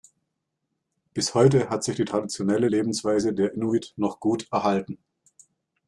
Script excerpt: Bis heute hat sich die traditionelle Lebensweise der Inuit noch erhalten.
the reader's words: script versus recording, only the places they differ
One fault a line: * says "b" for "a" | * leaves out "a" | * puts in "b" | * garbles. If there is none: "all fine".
* puts in "gut"